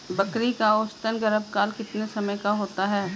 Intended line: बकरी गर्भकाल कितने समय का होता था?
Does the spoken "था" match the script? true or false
false